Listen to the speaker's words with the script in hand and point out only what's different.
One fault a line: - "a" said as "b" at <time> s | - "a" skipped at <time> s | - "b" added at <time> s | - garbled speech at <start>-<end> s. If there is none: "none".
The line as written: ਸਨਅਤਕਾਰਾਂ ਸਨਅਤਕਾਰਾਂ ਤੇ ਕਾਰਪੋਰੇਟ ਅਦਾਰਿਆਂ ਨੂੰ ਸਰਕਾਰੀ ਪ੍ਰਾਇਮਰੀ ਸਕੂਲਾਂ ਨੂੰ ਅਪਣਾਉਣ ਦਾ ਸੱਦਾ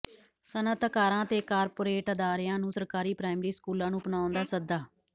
- "ਸਨਅਤਕਾਰਾਂ" skipped at 1.2 s